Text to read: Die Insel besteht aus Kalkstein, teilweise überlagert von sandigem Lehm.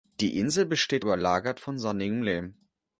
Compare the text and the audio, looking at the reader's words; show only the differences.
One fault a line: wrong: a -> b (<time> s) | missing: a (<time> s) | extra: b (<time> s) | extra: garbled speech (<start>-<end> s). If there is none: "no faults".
missing: aus Kalkstein teilweise (1.1 s)